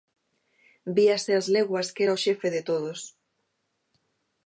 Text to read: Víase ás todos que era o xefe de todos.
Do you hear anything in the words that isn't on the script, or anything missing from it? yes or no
yes